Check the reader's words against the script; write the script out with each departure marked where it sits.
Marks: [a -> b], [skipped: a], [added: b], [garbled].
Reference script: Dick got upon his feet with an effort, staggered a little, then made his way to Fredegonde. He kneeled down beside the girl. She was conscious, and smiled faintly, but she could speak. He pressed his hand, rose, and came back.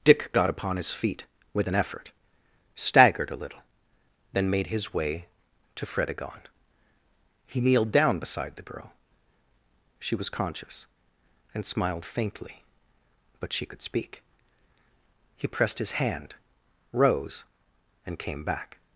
Dick got upon his feet with an effort, staggered a little, then made his way to Fredegonde. He kneeled down beside the girl. She was conscious, and smiled faintly, but she could speak. He pressed his hand, rose, and came back.